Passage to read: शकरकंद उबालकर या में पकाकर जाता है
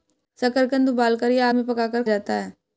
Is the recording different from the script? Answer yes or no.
no